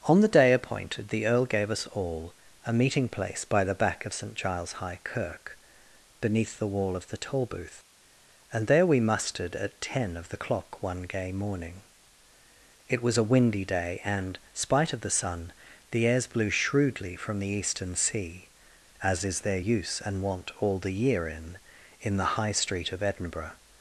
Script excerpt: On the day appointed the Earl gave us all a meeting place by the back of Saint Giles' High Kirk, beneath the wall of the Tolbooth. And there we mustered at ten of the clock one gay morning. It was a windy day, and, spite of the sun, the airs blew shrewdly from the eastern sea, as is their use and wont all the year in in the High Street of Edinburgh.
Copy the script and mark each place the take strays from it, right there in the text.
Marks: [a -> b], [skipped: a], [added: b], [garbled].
On the day appointed the Earl gave us all a meeting place by the back of Saint Giles' High Kirk, beneath the wall of the Tolbooth. And there we mustered at ten of the clock one gay morning. It was a windy day, and, spite of the sun, the airs blew shrewdly from the eastern sea, as is their use and wont all the year in in the High Street of Edinburgh.